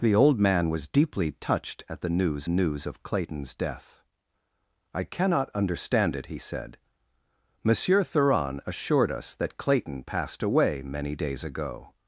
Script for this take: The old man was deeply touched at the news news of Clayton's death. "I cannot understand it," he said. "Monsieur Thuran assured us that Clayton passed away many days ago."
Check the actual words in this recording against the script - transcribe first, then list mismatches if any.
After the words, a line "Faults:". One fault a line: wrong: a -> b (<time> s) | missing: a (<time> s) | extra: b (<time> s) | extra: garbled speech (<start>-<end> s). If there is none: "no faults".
The old man was deeply touched at the news news of Clayton's death. "I cannot understand it," he said. "Monsieur Thuran assured us that Clayton passed away many days ago."
Faults:
no faults